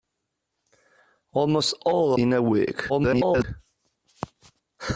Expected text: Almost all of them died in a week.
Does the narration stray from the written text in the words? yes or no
yes